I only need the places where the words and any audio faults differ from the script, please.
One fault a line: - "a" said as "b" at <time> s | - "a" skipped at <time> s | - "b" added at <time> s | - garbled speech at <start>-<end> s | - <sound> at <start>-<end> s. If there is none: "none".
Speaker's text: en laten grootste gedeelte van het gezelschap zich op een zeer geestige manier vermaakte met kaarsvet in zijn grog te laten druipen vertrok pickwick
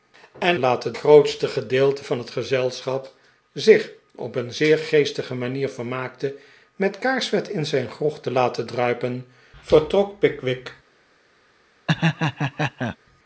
- laugh at 11.9-13.0 s